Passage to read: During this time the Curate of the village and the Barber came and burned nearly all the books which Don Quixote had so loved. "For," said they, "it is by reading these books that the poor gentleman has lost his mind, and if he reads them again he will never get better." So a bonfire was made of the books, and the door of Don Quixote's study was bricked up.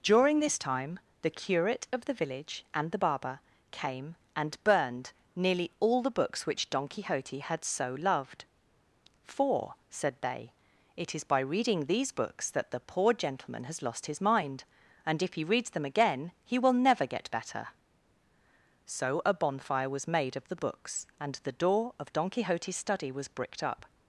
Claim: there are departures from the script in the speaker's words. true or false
false